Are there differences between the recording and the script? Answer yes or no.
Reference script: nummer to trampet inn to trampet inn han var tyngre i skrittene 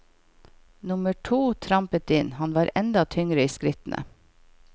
yes